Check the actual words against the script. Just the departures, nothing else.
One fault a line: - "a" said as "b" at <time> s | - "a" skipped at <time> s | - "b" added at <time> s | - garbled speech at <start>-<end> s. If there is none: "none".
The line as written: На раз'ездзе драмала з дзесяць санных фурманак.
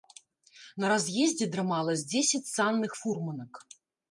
none